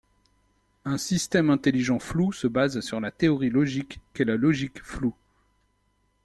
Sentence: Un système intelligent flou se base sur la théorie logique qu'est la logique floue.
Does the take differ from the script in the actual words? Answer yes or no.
no